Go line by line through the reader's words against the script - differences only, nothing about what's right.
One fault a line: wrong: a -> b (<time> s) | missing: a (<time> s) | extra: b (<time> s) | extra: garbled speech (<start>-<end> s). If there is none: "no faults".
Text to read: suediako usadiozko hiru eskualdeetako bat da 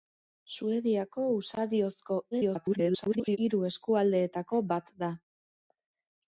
extra: garbled speech (2.3-3.4 s)